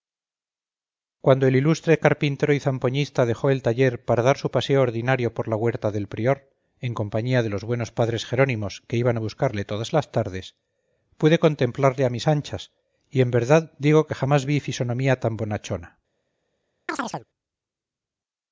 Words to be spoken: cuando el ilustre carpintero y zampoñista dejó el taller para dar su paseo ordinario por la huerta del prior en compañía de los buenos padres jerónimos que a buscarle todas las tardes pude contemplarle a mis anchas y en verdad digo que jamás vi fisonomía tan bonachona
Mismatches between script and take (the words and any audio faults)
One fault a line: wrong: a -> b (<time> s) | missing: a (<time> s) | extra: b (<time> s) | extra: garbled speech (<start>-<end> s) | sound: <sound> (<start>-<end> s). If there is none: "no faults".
extra: iban (8.9 s)
sound: chirp (16.9-17.3 s)